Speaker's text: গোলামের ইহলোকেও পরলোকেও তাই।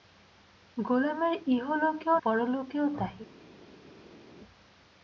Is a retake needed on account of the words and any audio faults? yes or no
no